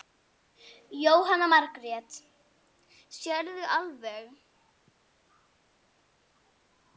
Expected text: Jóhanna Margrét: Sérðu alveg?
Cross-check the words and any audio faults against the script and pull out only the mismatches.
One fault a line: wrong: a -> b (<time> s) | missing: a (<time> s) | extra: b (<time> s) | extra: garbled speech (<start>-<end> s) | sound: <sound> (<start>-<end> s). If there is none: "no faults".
no faults